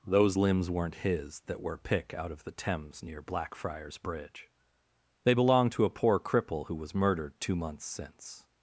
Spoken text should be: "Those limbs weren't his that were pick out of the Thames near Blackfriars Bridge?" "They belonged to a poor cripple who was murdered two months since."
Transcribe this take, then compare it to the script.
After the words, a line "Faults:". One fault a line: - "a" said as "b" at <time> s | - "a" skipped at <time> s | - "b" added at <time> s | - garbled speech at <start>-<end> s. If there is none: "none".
"Those limbs weren't his that were pick out of the Thames near Blackfriars Bridge?" "They belonged to a poor cripple who was murdered two months since."
Faults:
none